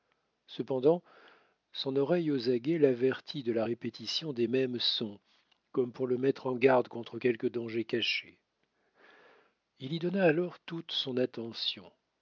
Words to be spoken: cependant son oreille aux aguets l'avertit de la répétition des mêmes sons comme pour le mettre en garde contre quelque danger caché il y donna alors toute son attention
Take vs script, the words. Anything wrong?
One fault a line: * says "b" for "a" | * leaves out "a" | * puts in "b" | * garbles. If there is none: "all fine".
all fine